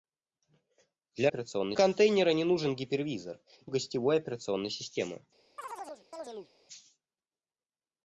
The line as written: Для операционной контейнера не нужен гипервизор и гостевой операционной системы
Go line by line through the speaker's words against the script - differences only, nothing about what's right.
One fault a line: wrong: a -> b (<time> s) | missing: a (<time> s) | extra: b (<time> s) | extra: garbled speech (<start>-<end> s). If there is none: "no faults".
no faults